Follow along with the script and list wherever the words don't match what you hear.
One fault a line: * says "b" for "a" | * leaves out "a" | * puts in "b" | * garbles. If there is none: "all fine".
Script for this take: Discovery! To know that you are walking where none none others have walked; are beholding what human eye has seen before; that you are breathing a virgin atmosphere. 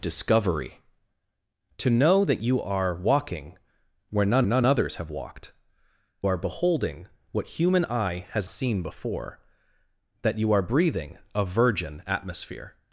all fine